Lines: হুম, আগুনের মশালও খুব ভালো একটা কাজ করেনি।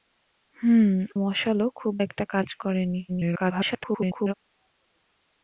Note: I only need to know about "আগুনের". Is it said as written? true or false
false